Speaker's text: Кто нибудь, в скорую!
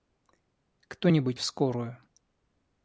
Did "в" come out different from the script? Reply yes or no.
no